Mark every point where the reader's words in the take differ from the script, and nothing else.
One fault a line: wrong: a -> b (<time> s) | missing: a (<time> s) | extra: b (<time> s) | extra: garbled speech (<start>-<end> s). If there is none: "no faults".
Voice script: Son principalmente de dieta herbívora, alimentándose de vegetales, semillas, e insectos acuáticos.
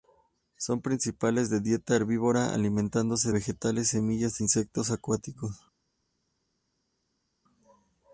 missing: de (3.3 s)